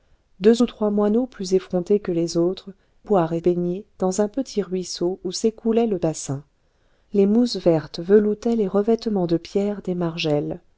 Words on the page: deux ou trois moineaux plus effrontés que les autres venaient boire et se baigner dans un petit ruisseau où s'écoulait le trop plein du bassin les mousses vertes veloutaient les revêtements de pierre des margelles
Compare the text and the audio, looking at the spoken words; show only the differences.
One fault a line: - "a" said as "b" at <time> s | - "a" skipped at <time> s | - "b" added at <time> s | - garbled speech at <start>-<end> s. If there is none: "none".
- "venaient" skipped at 2.7 s
- "se" skipped at 3.4 s
- "trop plein du" skipped at 6.0 s